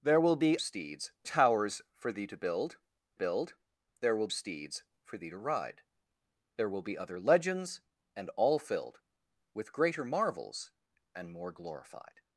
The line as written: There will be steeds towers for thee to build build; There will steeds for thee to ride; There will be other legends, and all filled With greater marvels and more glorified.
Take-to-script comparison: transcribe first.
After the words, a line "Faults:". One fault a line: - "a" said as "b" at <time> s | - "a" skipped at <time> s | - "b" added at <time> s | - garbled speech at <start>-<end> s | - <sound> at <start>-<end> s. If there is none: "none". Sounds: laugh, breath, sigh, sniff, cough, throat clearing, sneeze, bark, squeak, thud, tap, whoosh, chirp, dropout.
There will be steeds towers for thee to build build; There will steeds for thee to ride; There will be other legends, and all filled With greater marvels and more glorified.
Faults:
none